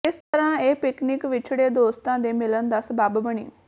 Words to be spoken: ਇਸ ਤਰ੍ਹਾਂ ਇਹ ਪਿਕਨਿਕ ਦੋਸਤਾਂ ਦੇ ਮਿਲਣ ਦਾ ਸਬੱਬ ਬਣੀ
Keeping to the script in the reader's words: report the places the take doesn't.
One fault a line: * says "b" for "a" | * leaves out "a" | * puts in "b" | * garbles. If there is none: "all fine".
* puts in "ਵਿਛੜੇ"